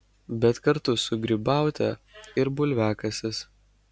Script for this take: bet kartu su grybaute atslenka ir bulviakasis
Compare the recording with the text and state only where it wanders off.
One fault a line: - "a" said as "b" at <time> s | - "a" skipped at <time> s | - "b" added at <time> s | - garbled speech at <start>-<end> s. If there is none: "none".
- "atslenka" skipped at 1.9 s